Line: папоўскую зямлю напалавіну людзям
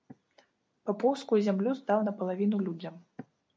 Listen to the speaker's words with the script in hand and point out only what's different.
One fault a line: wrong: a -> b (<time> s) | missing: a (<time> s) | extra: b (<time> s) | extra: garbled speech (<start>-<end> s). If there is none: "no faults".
extra: здаў (1.8 s)